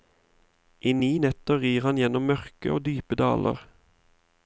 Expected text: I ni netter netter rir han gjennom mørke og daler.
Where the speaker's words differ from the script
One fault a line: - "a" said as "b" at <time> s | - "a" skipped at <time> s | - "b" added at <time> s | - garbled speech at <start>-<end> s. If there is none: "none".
- "netter" skipped at 1.6 s
- "dype" added at 2.9 s